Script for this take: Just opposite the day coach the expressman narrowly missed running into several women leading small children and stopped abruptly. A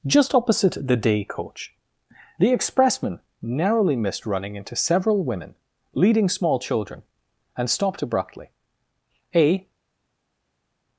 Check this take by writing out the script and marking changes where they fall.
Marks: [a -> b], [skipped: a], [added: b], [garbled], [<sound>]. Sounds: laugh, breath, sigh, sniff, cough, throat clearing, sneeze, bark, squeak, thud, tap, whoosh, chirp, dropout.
Just opposite the day coach the expressman narrowly missed running into several women leading small children and stopped abruptly. A